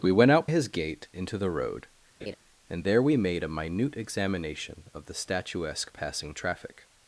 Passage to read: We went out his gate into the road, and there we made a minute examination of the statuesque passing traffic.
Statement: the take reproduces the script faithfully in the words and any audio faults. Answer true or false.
false